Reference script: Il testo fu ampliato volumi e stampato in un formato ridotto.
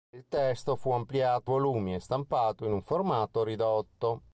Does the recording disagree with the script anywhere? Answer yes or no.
no